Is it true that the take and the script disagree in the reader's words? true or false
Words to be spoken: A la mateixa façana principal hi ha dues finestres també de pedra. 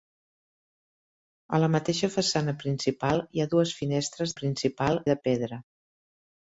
true